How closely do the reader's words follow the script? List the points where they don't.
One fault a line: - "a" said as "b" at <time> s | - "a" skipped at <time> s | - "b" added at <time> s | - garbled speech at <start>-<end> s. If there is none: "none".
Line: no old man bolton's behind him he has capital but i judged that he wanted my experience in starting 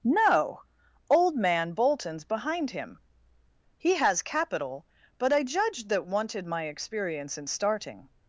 - "he" skipped at 6.0 s